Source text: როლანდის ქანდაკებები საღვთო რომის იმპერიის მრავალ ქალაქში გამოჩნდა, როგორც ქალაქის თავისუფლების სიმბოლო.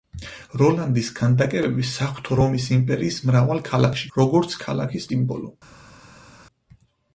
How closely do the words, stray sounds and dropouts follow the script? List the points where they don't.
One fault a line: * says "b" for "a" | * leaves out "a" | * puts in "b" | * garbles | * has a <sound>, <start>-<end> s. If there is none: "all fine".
* leaves out "გამოჩნდა"
* leaves out "თავისუფლების"